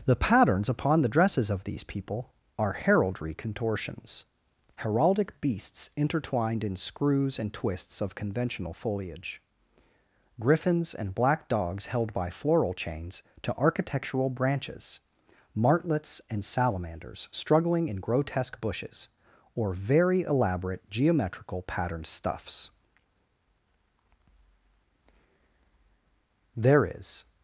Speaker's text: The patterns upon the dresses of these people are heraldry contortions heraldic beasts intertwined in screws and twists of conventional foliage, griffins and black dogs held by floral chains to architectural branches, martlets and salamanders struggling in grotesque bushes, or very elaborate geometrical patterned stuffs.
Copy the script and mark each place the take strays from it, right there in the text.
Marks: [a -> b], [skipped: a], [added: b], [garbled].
The patterns upon the dresses of these people are heraldry contortions heraldic beasts intertwined in screws and twists of conventional foliage, griffins and black dogs held by floral chains to architectural branches, martlets and salamanders struggling in grotesque bushes, or very elaborate geometrical patterned stuffs. [added: There is]